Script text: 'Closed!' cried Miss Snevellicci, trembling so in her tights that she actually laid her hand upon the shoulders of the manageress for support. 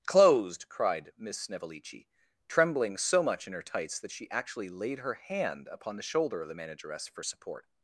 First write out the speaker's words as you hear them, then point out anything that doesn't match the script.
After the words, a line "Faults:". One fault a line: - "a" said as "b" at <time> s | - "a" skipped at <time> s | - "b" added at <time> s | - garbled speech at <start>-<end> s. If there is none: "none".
'Closed!' cried Miss Snevellicci, trembling so much in her tights that she actually laid her hand upon the shoulder of the manageress for support.
Faults:
- "much" added at 3.2 s
- "shoulders" said as "shoulder" at 6.0 s